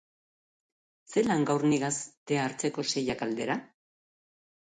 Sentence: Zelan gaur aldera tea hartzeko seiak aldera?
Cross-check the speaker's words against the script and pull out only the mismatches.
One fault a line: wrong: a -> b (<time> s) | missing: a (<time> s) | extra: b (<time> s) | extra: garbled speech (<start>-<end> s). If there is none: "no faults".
wrong: aldera -> nigaz (1.7 s)